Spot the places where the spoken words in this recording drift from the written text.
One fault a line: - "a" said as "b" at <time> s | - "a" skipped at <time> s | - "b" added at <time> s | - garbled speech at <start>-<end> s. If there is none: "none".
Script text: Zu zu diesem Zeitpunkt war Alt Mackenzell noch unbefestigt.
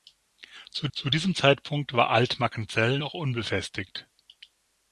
none